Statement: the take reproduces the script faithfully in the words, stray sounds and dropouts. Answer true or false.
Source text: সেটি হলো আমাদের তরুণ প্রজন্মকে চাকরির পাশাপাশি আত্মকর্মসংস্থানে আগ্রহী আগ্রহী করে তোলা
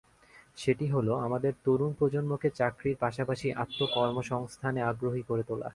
false